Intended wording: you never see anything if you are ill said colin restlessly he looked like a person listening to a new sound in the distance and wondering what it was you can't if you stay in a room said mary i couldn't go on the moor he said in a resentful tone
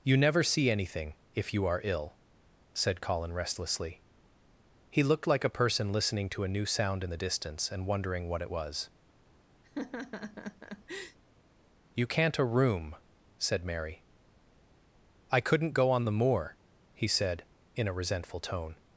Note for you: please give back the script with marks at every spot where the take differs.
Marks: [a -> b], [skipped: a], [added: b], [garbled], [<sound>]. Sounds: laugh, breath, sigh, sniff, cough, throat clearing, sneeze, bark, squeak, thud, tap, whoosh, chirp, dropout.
you never see anything if you are ill said colin restlessly he looked like a person listening to a new sound in the distance and wondering what it was [laugh] you can't [skipped: if you stay in] a room said mary i couldn't go on the moor he said in a resentful tone